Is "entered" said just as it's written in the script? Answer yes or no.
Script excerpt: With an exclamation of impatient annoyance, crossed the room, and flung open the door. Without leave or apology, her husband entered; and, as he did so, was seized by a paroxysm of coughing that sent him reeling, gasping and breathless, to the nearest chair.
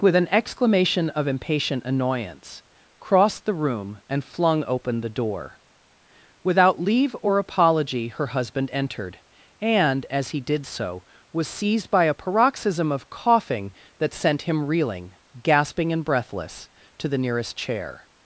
yes